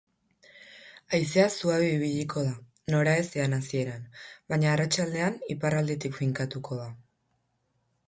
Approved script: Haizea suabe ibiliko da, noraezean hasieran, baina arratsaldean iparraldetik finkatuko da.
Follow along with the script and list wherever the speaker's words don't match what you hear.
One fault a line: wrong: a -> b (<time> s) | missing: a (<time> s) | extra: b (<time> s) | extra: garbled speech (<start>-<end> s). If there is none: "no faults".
no faults